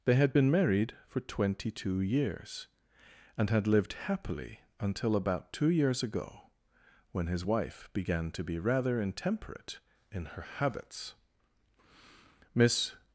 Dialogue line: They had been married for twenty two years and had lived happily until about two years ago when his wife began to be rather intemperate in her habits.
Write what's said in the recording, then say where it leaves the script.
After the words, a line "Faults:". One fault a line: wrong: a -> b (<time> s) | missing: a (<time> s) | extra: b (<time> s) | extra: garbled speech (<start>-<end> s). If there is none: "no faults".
They had been married for twenty two years and had lived happily until about two years ago when his wife began to be rather intemperate in her habits. Miss
Faults:
extra: Miss (12.5 s)